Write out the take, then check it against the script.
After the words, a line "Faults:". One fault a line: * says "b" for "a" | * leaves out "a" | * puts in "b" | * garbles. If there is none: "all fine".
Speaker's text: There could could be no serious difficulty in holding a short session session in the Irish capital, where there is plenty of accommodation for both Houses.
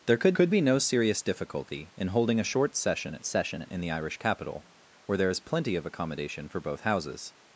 There could could be no serious difficulty in holding a short session session in the Irish capital, where there is plenty of accommodation for both Houses.
Faults:
all fine